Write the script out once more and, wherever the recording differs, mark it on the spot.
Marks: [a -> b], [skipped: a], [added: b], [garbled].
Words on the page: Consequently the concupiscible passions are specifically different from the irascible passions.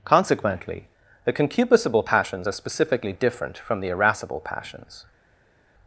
Consequently the concupiscible passions are specifically different from the irascible passions.